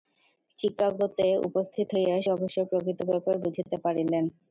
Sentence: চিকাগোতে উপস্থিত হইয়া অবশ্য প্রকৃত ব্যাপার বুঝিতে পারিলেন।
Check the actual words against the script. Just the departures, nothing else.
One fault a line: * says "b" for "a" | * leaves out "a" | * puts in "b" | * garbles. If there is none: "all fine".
all fine